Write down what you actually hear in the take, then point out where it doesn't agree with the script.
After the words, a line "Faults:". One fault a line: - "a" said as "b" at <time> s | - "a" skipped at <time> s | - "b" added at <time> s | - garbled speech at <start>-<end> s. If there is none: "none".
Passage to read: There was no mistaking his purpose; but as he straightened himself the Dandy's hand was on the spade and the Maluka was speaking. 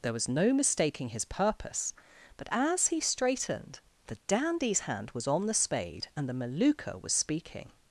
There was no mistaking his purpose; but as he straightened the Dandy's hand was on the spade and the Maluka was speaking.
Faults:
- "himself" skipped at 3.8 s